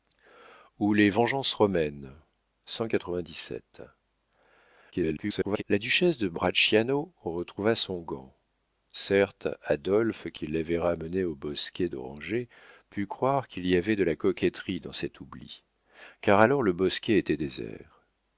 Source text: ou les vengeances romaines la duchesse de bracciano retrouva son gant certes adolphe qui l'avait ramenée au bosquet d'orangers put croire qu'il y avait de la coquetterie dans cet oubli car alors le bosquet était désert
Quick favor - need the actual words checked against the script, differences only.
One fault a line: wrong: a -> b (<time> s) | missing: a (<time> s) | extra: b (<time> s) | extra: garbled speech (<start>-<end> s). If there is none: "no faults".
extra: garbled speech (4.9-5.6 s)